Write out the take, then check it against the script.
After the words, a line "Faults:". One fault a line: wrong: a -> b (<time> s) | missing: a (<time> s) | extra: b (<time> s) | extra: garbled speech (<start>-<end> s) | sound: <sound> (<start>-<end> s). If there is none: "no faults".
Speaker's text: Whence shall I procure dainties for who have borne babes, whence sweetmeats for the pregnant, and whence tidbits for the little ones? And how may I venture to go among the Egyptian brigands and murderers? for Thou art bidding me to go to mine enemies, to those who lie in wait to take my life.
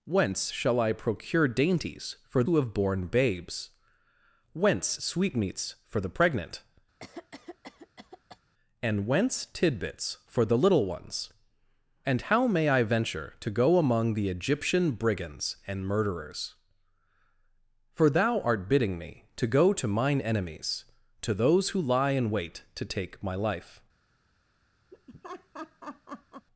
Whence shall I procure dainties for who have borne babes, whence sweetmeats for the pregnant, and whence tidbits for the little ones? And how may I venture to go among the Egyptian brigands and murderers? for Thou art bidding me to go to mine enemies, to those who lie in wait to take my life.
Faults:
sound: cough (7.0-8.4 s)
sound: laugh (24.9-26.5 s)